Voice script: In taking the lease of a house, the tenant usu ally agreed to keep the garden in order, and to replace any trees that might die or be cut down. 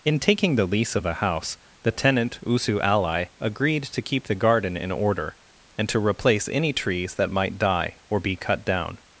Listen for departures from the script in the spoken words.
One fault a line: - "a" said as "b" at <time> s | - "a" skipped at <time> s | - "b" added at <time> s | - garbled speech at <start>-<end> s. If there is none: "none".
none